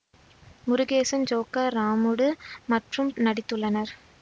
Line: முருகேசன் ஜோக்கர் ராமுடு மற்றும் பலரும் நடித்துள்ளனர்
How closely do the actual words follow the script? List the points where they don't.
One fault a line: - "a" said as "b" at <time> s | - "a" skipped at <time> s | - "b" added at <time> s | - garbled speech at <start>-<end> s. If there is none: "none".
- "பலரும்" skipped at 3.1 s